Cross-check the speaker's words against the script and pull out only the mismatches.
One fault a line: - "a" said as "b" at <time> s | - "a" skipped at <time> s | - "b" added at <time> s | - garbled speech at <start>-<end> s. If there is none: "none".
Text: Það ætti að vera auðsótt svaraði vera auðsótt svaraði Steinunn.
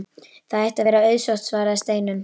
- "vera auðsótt svaraði" skipped at 1.8 s